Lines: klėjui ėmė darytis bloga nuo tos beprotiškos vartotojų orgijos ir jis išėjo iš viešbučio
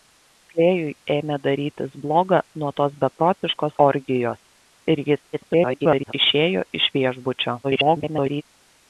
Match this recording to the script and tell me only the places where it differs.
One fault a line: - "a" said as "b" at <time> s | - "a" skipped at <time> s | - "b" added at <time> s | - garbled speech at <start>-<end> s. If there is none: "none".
- "vartotojų" skipped at 3.8 s
- garbled speech at 5.3-6.1 s
- garbled speech at 7.6-8.4 s